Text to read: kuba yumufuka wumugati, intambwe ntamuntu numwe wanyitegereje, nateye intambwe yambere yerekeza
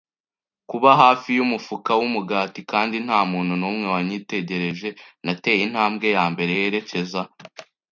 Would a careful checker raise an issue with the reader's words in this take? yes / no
yes